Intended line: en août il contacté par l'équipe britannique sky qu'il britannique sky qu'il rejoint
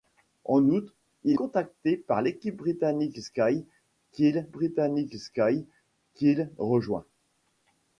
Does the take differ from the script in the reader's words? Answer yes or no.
no